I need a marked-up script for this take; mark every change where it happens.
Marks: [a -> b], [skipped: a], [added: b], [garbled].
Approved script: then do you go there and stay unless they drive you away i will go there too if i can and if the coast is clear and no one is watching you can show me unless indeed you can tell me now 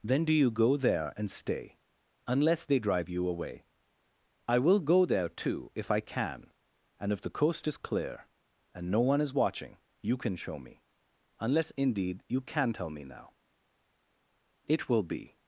then do you go there and stay unless they drive you away i will go there too if i can and if the coast is clear and no one is watching you can show me unless indeed you can tell me now [added: it will be]